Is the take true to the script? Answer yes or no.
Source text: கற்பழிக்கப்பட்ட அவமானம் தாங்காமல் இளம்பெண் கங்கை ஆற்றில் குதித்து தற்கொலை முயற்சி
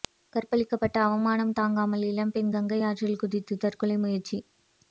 yes